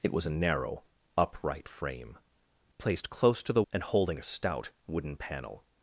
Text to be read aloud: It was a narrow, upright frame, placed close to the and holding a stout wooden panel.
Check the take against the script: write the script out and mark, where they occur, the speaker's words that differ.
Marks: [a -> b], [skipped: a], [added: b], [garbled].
It was a narrow, upright frame, placed close to the and holding a stout wooden panel.